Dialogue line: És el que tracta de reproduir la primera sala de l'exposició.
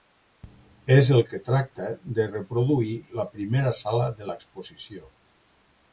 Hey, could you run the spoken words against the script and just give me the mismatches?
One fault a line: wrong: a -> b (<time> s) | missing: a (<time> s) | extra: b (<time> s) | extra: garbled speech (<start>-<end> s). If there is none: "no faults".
no faults